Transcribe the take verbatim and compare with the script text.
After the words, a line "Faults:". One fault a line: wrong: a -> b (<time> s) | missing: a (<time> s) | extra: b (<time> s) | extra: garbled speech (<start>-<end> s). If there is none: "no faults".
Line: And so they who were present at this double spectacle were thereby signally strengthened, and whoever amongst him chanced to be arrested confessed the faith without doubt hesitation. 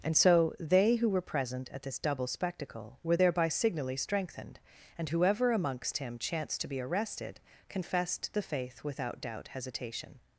And so they who were present at this double spectacle were thereby signally strengthened, and whoever amongst him chanced to be arrested confessed the faith without doubt hesitation.
Faults:
no faults